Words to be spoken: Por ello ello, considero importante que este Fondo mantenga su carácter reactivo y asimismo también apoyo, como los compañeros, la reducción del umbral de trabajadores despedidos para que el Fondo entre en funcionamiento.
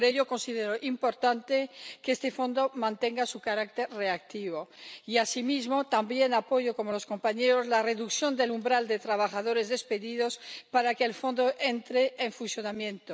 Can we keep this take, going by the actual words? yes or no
no